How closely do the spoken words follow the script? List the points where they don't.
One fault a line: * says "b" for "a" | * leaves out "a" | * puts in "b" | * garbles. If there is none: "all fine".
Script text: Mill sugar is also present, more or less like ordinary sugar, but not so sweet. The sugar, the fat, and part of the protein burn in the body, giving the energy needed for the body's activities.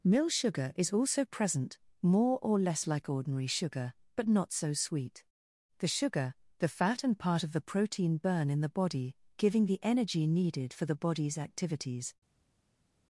all fine